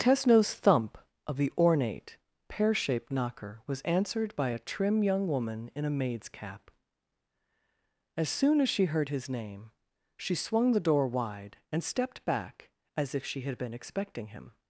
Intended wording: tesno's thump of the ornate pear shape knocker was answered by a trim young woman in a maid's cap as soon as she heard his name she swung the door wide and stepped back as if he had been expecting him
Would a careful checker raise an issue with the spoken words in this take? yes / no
yes